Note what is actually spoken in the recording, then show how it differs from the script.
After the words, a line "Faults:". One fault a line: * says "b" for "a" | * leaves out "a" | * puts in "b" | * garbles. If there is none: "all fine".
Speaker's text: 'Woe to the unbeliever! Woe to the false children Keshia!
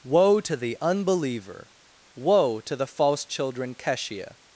'Woe to the unbeliever! Woe to the false children Keshia!
Faults:
all fine